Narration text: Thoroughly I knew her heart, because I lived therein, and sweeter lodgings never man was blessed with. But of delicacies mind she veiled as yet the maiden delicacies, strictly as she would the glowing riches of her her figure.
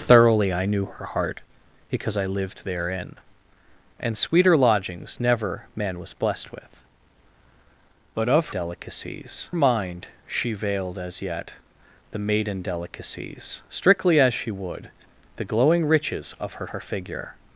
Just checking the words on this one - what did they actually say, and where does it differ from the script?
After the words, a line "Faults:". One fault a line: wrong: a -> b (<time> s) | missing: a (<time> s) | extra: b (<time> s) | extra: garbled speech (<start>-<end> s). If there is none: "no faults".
Thoroughly I knew her heart, because I lived therein, and sweeter lodgings never man was blessed with. But of delicacies mind she veiled as yet the maiden delicacies, strictly as she would the glowing riches of her her figure.
Faults:
no faults